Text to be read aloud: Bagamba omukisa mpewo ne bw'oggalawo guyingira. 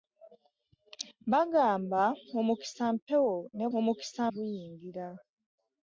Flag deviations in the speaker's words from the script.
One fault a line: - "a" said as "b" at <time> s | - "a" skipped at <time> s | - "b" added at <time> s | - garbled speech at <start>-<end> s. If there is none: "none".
- "bw'oggalawo" said as "omukisa" at 3.8 s